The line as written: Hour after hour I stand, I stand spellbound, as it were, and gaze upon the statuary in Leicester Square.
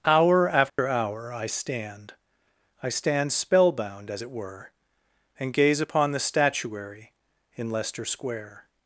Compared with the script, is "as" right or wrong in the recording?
right